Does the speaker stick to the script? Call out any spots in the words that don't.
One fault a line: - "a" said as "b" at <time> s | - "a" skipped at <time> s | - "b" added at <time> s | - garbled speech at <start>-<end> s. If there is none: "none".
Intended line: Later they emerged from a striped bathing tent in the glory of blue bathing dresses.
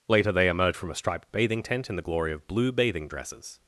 - "emerged" said as "emerge" at 0.5 s